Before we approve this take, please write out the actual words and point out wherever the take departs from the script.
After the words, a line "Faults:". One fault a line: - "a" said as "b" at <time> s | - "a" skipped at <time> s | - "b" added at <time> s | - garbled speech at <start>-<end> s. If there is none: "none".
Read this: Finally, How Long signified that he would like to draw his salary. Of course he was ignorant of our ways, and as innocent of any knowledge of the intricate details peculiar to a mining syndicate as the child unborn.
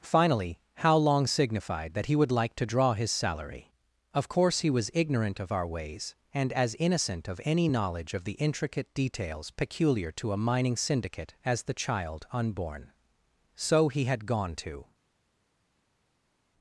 Finally, How Long signified that he would like to draw his salary. Of course he was ignorant of our ways, and as innocent of any knowledge of the intricate details peculiar to a mining syndicate as the child unborn. So he had gone to
Faults:
- "So he had gone to" added at 13.6 s